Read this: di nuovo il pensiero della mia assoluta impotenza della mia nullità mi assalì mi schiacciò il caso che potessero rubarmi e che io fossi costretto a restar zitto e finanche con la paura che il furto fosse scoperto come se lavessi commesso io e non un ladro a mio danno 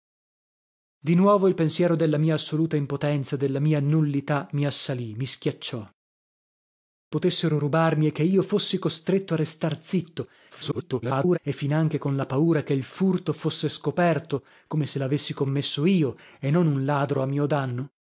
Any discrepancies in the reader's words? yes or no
yes